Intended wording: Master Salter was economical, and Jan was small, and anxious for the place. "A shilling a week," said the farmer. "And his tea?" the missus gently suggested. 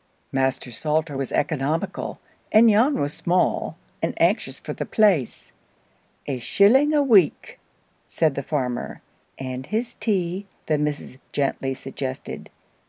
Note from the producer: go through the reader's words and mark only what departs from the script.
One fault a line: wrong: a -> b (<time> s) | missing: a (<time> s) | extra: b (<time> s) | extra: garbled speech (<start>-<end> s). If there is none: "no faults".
no faults